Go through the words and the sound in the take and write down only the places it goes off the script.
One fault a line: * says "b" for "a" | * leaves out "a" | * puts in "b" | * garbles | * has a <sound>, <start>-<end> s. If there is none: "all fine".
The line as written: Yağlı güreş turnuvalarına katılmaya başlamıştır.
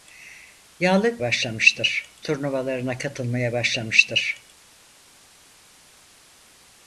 * says "başlamıştır" for "güreş"